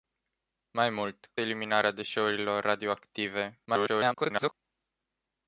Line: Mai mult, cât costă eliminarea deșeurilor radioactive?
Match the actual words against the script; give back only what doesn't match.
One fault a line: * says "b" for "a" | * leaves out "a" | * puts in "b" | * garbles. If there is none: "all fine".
* leaves out "cât costă"
* garbles